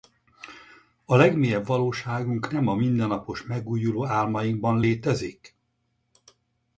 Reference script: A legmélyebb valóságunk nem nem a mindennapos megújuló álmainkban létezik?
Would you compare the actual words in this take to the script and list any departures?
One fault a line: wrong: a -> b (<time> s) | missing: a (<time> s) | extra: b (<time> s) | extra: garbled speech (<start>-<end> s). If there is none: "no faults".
missing: nem (2.7 s)